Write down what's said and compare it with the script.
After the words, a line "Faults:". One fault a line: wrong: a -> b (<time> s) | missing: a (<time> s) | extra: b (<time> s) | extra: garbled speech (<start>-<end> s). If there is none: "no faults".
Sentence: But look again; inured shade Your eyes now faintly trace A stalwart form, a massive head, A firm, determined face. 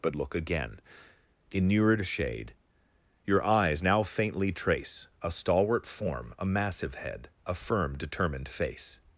But look again; inured shade Your eyes now faintly trace A stalwart form, a massive head, A firm, determined face.
Faults:
no faults